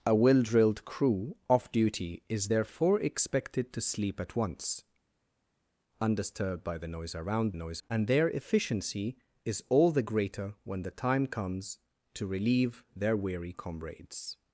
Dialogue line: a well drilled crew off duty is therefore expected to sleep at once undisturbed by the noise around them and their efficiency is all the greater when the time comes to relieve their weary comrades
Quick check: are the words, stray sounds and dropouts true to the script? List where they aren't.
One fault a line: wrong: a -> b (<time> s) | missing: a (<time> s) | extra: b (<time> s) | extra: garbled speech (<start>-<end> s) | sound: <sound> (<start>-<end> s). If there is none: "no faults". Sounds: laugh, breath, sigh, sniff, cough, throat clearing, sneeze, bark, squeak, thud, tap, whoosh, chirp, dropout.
wrong: them -> noise (7.5 s)